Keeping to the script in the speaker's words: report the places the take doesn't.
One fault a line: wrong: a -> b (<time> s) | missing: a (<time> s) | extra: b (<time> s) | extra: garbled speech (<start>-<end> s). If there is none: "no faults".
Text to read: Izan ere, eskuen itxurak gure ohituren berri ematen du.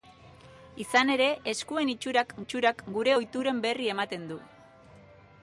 extra: itxurak (2.4 s)